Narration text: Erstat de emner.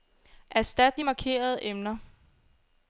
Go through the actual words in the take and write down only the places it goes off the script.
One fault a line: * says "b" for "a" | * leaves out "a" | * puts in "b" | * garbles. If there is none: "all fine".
* puts in "markerede"